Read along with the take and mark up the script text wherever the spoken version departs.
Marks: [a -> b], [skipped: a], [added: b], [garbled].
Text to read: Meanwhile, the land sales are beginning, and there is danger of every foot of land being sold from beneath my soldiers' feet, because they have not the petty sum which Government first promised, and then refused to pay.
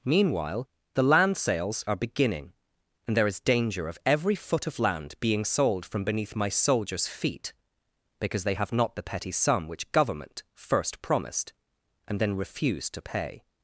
Meanwhile, the land sales are beginning, and there is danger of every foot of land being sold from beneath my soldiers' feet, because they have not the petty sum which Government first promised, and then refused to pay.